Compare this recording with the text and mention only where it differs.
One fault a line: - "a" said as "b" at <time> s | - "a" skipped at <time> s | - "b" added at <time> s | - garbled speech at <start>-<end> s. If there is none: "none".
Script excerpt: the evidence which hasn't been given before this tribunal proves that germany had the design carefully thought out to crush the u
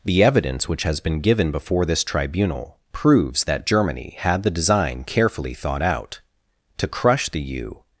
- "hasn't" said as "has" at 0.8 s